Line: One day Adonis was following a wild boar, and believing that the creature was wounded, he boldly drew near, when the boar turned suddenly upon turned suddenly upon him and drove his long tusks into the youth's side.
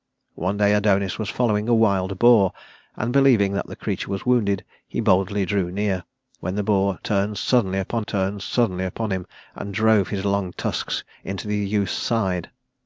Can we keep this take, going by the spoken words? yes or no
yes